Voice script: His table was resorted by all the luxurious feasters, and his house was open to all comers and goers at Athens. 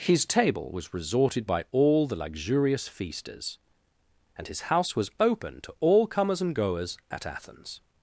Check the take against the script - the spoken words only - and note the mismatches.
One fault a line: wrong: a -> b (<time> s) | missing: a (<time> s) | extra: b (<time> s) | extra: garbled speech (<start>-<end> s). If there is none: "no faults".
no faults